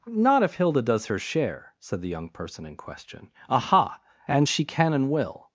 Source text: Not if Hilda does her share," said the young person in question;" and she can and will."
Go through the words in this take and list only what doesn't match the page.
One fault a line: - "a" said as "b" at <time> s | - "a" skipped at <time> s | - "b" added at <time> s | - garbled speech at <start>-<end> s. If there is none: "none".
- "aha" added at 3.5 s